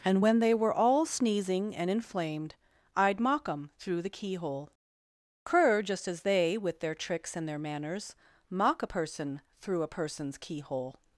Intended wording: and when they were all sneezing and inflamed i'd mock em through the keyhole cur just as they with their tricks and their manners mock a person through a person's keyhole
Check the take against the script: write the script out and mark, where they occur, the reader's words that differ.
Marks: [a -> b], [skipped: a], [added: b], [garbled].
and when they were all sneezing and inflamed i'd mock em through the keyhole cur just as they with their tricks and their manners mock a person through a person's keyhole